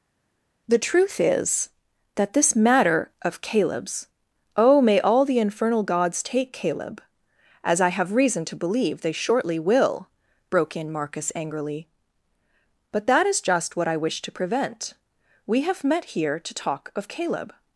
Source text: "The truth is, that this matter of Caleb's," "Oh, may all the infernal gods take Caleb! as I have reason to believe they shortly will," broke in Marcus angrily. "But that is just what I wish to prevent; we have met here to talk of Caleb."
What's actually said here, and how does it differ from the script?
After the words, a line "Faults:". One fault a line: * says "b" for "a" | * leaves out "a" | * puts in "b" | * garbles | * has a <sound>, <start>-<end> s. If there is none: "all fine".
"The truth is, that this matter of Caleb's," "Oh, may all the infernal gods take Caleb! as I have reason to believe they shortly will," broke in Marcus angrily. "But that is just what I wish to prevent; we have met here to talk of Caleb."
Faults:
all fine